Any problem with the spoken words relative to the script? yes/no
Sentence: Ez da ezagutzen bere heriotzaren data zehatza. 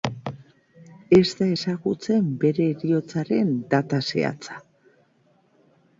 no